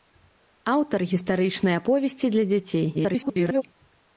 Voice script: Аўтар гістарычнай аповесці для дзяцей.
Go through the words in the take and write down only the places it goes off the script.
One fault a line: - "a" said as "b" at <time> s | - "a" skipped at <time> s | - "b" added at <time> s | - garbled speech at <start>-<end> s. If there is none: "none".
- garbled speech at 2.9-3.6 s